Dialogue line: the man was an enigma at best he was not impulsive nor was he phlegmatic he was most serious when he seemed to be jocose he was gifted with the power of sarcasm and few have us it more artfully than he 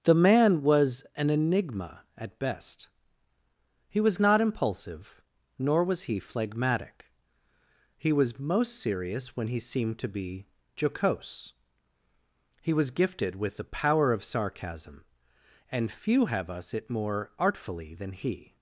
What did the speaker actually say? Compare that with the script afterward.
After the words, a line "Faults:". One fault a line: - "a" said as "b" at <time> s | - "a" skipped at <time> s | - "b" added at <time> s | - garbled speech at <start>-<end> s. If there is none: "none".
the man was an enigma at best he was not impulsive nor was he phlegmatic he was most serious when he seemed to be jocose he was gifted with the power of sarcasm and few have us it more artfully than he
Faults:
none